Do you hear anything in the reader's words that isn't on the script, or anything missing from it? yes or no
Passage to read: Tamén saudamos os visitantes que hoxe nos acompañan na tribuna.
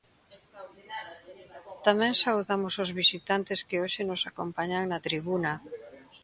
no